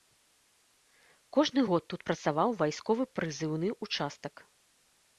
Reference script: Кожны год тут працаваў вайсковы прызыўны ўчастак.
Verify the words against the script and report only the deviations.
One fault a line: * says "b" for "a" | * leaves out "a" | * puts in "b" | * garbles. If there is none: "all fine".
all fine